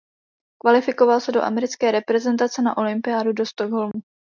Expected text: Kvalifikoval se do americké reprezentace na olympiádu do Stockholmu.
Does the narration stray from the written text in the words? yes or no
no